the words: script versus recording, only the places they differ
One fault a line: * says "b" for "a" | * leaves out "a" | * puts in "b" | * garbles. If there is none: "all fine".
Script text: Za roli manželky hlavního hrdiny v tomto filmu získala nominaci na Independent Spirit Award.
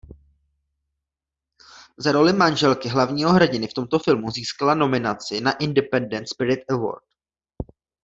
all fine